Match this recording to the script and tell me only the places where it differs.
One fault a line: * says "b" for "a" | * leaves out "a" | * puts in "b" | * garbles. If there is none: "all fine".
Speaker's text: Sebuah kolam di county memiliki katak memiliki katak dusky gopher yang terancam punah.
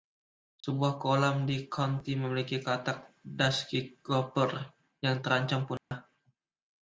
* leaves out "memiliki katak"